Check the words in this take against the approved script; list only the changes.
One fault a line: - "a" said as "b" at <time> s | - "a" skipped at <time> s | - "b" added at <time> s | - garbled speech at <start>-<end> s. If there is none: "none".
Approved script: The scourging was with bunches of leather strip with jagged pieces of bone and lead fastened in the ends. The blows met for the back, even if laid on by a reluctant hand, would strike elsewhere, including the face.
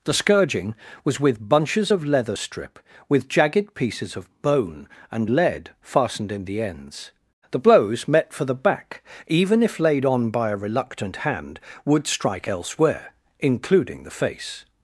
none